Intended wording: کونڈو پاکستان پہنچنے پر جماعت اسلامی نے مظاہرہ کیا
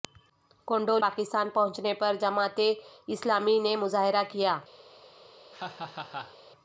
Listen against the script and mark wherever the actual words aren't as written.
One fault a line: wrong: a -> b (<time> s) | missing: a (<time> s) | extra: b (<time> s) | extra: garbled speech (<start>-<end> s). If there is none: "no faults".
no faults